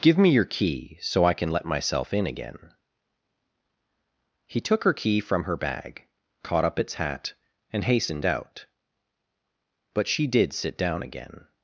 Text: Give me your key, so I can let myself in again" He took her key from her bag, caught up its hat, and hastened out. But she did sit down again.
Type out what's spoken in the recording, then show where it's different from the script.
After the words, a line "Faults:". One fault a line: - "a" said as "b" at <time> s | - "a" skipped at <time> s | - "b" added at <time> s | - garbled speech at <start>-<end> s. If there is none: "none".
Give me your key, so I can let myself in again" He took her key from her bag, caught up its hat, and hastened out. But she did sit down again.
Faults:
none